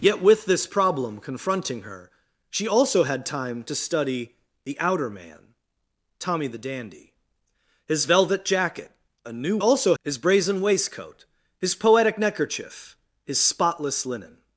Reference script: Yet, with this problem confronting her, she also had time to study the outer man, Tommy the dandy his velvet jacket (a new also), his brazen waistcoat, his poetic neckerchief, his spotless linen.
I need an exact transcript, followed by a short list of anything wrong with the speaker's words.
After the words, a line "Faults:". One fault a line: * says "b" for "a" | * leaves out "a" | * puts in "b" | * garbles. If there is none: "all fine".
Yet, with this problem confronting her, she also had time to study the outer man, Tommy the dandy his velvet jacket (a new also), his brazen waistcoat, his poetic neckerchief, his spotless linen.
Faults:
all fine